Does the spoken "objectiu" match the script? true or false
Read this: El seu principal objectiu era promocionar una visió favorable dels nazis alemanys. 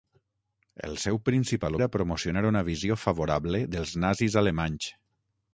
false